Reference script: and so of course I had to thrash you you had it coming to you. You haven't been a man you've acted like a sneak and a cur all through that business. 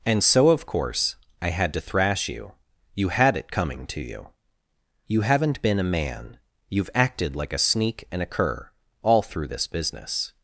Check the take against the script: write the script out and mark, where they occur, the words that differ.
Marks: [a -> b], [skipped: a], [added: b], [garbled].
and so of course I had to thrash you you had it coming to you. You haven't been a man you've acted like a sneak and a cur all through [that -> this] business.